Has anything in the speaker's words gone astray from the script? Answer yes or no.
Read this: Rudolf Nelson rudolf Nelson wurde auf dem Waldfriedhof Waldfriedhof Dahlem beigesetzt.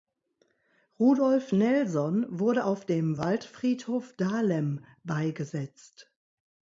yes